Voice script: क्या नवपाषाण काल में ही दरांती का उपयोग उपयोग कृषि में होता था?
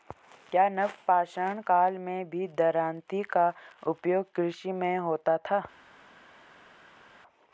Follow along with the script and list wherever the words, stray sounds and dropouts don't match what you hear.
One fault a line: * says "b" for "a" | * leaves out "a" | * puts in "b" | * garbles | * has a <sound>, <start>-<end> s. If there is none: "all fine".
* says "भी" for "ही"
* leaves out "उपयोग"